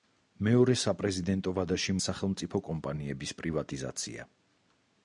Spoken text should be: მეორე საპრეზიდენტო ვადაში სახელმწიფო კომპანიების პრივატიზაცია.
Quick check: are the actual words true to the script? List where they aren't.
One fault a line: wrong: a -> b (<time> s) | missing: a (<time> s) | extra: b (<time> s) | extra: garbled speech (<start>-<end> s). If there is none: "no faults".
no faults